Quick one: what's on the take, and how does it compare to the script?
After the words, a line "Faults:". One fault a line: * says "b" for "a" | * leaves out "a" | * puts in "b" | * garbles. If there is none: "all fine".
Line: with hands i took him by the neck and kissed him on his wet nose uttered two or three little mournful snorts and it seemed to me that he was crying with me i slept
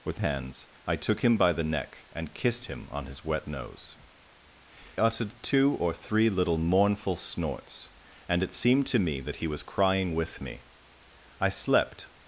with hands i took him by the neck and kissed him on his wet nose uttered two or three little mournful snorts and it seemed to me that he was crying with me i slept
Faults:
all fine